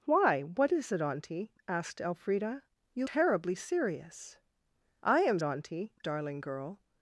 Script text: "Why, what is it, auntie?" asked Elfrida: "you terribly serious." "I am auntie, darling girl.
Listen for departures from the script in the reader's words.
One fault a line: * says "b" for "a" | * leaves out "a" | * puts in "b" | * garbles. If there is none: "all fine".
all fine